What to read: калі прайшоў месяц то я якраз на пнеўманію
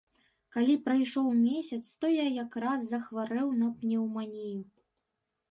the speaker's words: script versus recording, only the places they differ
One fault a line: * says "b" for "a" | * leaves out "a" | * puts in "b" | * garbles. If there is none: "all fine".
* puts in "захварэў"